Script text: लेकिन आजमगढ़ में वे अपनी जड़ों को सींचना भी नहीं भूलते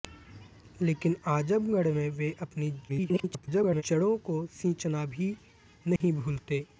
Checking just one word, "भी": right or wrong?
right